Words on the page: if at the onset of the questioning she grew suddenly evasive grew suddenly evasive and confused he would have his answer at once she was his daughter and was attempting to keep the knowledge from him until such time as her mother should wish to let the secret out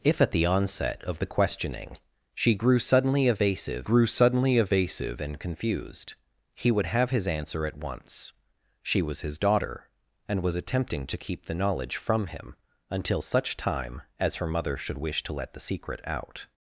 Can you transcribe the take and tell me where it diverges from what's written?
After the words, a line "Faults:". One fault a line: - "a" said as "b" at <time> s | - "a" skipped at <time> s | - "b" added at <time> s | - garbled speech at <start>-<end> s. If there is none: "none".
if at the onset of the questioning she grew suddenly evasive grew suddenly evasive and confused he would have his answer at once she was his daughter and was attempting to keep the knowledge from him until such time as her mother should wish to let the secret out
Faults:
none